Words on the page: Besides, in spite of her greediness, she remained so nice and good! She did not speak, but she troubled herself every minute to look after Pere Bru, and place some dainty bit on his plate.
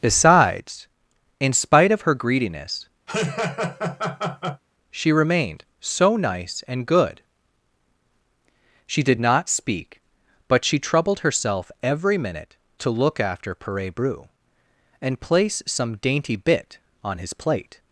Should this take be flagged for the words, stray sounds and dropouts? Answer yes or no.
yes